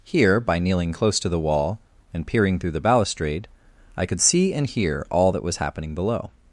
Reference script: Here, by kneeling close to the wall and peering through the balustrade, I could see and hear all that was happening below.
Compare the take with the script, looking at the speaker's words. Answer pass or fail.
pass